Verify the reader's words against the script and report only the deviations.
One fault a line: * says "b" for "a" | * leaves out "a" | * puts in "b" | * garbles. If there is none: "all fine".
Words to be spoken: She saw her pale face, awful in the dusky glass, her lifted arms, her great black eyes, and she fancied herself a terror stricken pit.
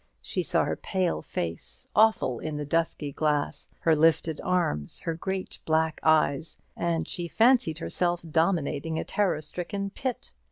* puts in "dominating"